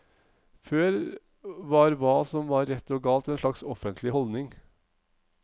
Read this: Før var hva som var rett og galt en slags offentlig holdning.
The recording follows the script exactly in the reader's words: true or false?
true